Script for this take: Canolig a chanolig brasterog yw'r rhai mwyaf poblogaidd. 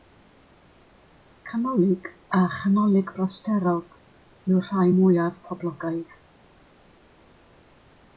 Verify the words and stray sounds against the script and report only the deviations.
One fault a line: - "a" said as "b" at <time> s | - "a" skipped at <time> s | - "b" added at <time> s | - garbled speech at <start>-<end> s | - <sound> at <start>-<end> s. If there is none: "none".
none